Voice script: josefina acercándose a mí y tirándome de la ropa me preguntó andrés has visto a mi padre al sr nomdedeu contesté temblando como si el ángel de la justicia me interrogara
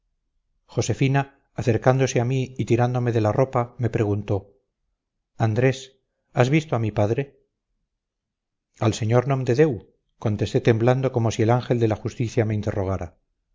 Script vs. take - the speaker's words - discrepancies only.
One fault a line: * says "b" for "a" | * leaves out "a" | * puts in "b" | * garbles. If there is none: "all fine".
all fine